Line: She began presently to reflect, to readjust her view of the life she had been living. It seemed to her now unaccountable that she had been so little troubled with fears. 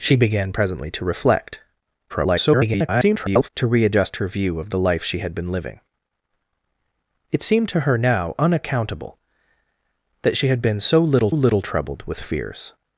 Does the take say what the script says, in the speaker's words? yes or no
no